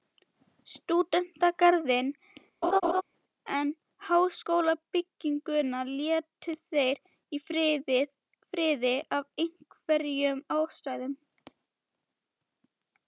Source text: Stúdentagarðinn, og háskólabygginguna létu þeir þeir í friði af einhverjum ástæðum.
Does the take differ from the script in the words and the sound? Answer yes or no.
yes